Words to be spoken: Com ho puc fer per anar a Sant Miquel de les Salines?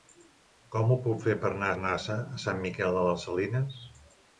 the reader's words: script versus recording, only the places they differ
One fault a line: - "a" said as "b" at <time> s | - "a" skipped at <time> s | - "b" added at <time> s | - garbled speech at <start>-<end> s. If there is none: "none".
- "anar" added at 1.8 s